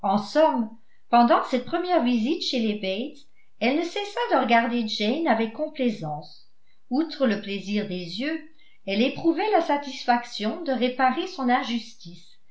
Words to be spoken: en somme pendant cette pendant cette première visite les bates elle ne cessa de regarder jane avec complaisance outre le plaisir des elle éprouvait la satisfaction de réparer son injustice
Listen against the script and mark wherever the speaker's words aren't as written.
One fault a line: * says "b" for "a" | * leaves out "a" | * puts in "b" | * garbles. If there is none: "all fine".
* leaves out "pendant cette"
* puts in "chez"
* puts in "yeux"